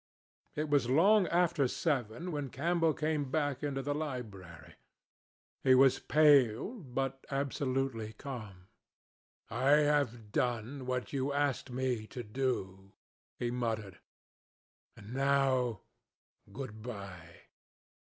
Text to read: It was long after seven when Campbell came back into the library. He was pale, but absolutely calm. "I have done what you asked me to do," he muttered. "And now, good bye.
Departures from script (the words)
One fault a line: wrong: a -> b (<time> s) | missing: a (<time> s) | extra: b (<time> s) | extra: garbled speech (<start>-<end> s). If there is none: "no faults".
no faults